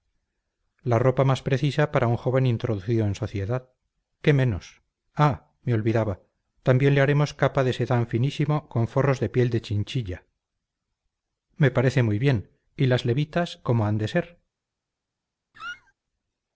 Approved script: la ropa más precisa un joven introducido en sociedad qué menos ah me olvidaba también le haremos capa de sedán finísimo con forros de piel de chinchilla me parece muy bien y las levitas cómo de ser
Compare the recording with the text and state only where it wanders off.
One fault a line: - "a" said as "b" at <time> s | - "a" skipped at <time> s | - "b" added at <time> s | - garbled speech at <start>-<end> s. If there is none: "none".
- "para" added at 1.9 s
- "han" added at 13.9 s